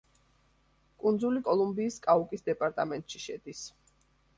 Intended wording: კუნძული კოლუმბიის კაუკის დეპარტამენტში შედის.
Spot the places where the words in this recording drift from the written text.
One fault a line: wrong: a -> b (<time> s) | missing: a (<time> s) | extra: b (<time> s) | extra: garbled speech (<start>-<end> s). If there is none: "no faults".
no faults